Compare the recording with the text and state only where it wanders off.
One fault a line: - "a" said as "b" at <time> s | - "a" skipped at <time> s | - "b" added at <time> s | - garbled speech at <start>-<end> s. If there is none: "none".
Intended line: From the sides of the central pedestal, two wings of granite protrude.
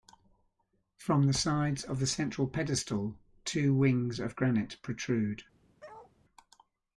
none